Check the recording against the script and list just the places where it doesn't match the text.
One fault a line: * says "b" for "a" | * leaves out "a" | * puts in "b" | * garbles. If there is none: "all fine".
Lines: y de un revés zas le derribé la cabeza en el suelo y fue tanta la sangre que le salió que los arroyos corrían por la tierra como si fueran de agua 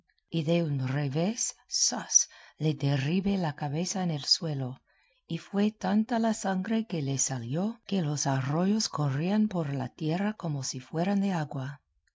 all fine